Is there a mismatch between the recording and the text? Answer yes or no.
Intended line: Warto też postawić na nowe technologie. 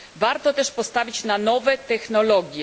no